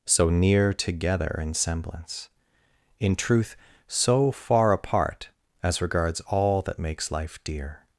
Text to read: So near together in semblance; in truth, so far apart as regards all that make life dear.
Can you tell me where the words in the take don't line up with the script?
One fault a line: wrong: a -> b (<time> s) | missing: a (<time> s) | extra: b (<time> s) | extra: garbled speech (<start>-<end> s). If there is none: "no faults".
wrong: make -> makes (6.8 s)